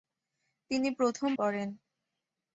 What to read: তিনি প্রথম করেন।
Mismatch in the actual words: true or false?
false